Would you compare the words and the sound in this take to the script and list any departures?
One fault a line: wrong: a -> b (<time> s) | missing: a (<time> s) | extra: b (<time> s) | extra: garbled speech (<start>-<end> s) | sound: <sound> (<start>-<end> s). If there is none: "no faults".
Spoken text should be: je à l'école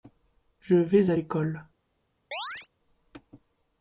extra: vais (0.8 s)
sound: chirp (2.3-2.7 s)